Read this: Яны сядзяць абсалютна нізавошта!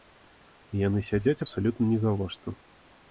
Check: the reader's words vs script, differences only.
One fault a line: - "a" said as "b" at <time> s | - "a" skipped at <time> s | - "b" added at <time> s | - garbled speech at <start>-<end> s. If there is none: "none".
none